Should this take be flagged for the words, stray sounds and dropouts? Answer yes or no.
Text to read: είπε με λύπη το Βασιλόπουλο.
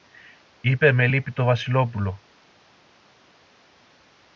no